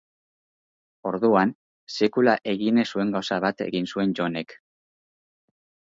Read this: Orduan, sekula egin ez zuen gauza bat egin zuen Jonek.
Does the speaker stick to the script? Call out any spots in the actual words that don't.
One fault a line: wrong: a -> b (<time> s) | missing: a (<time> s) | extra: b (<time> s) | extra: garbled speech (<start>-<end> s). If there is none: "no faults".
no faults